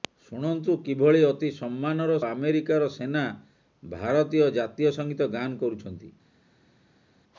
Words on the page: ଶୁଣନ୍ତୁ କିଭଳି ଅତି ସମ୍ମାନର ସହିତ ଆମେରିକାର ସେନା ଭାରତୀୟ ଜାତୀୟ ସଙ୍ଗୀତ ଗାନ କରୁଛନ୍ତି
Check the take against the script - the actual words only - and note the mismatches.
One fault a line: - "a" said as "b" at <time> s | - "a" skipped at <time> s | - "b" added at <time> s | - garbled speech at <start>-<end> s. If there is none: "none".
- "ସହିତ" skipped at 2.1 s